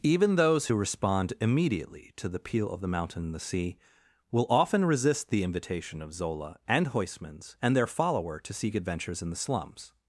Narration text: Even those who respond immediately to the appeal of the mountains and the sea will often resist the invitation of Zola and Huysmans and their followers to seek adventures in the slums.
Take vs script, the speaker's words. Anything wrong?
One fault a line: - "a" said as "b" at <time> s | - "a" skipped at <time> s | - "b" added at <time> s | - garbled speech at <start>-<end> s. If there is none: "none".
- "mountains" said as "mountain" at 2.9 s
- "followers" said as "follower" at 7.9 s